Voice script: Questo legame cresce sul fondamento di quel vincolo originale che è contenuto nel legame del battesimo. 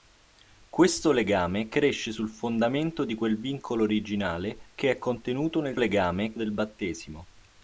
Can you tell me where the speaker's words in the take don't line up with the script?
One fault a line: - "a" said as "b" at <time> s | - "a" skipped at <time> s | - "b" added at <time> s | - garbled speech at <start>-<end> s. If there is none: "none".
none